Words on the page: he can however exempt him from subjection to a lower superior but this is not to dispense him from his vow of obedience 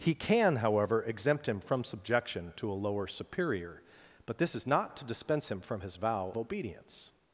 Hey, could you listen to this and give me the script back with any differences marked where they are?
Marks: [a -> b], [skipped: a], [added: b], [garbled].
he can however exempt him from subjection to a lower superior but this is not to dispense him from his vow [skipped: of] obedience